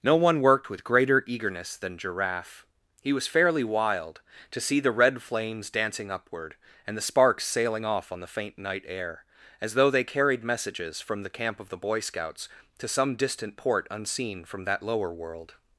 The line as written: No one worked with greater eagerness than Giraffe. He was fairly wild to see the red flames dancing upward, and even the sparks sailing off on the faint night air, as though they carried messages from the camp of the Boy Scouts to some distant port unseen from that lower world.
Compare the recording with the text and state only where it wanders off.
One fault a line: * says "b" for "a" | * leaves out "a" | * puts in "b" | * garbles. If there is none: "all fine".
* leaves out "even"